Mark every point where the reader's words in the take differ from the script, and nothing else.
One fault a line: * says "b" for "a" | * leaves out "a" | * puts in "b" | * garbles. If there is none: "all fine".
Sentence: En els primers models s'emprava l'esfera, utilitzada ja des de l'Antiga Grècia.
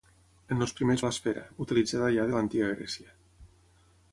* leaves out "models s'emprava"
* leaves out "des"